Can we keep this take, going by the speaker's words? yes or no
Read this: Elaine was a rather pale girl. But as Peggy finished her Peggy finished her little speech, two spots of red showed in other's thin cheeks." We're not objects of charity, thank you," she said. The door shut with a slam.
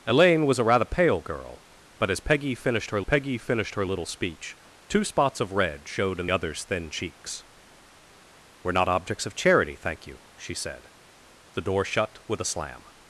yes